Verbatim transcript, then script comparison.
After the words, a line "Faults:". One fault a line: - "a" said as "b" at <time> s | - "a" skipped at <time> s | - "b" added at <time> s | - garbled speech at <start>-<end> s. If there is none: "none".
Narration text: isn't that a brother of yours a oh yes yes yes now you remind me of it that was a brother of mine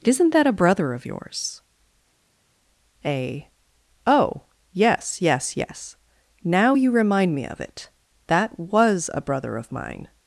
isn't that a brother of yours a oh yes yes yes now you remind me of it that was a brother of mine
Faults:
none